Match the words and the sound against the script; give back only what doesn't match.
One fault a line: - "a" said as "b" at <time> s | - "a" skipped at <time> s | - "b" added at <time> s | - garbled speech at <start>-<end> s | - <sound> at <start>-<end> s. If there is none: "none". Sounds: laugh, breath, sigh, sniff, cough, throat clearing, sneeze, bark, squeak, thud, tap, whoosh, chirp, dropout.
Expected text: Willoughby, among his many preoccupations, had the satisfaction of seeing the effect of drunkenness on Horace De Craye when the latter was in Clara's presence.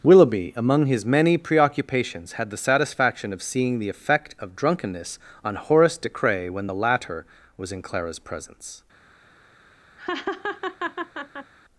- laugh at 10.0-11.5 s